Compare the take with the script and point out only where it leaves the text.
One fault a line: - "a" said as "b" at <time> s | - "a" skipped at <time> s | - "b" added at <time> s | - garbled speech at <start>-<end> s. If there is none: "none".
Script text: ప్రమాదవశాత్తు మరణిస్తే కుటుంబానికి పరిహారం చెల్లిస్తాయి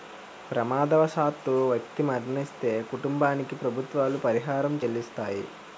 - "వ్యక్తి" added at 1.7 s
- "ప్రభుత్వాలు" added at 3.6 s